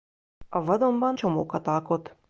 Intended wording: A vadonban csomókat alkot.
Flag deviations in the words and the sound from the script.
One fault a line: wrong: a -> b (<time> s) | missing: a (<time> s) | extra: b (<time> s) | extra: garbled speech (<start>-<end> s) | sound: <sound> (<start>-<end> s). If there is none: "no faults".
no faults